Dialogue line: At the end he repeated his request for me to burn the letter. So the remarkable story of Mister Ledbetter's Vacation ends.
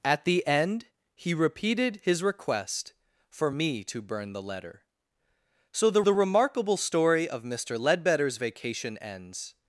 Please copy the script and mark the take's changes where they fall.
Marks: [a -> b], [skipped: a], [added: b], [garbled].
At the end he repeated his request for me to burn the letter. So the [added: the] remarkable story of Mister Ledbetter's Vacation ends.